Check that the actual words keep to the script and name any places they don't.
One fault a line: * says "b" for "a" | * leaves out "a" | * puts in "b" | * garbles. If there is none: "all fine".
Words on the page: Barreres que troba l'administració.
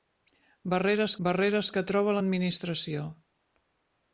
* puts in "barreres"